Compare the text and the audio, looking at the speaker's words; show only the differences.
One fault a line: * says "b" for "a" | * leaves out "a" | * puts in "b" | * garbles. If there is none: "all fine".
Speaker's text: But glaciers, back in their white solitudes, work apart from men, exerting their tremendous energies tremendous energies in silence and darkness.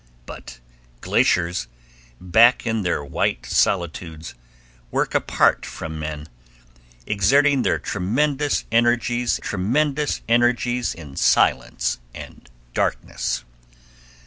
all fine